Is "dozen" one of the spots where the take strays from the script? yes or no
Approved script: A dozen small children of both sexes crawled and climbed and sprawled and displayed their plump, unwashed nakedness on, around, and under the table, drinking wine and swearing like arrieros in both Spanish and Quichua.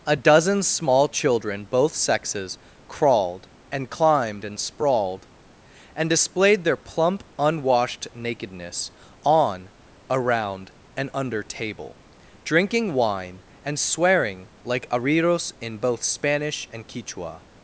no